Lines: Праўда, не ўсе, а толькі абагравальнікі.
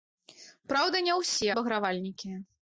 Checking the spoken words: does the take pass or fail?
fail